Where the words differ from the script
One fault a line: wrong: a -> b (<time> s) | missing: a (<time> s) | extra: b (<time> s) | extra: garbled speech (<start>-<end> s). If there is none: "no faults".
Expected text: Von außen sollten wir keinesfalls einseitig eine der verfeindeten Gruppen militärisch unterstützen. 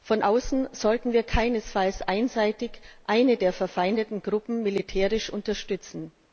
no faults